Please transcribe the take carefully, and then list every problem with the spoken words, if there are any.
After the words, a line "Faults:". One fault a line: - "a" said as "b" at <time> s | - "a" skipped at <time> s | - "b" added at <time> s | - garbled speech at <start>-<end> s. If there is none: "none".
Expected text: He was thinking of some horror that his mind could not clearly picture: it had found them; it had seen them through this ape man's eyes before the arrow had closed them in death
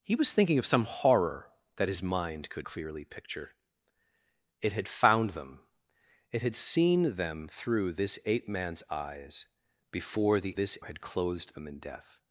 He was thinking of some horror that his mind could clearly picture: it had found them; it had seen them through this ape man's eyes before the this had closed them in death
Faults:
- "not" skipped at 2.7 s
- "arrow" said as "this" at 10.5 s